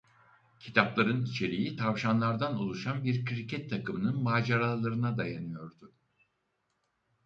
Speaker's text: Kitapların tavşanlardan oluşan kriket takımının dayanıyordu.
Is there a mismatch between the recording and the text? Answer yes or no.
yes